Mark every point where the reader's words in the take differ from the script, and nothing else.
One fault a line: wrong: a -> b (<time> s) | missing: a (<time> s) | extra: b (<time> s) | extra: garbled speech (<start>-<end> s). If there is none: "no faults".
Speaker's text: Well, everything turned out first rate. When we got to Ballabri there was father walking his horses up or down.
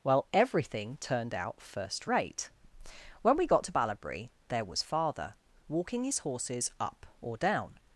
no faults